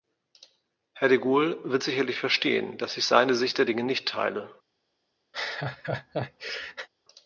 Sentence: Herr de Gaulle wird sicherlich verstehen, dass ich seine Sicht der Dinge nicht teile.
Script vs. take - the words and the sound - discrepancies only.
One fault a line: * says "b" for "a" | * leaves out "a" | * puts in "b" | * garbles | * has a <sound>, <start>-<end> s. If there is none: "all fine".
* has a laugh, 5.3-6.9 s